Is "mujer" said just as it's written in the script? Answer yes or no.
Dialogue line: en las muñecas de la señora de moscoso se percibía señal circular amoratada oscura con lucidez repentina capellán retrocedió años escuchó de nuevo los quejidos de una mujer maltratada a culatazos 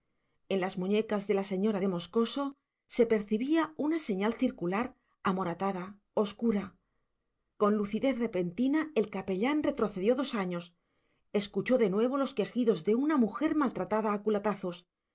yes